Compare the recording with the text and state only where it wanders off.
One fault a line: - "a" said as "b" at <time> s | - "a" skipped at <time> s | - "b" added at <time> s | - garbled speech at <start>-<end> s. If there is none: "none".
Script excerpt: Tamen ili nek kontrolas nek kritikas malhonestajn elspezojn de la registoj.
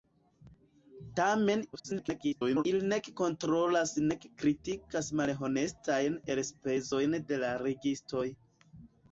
- garbled speech at 1.7-2.6 s